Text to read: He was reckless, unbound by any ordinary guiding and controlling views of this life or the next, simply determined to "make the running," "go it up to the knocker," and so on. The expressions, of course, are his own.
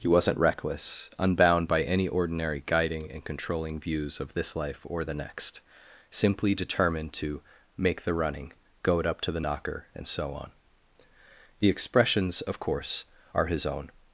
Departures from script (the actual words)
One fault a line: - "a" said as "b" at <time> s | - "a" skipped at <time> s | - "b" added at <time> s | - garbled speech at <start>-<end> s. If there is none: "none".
- "was" said as "wasn't" at 0.1 s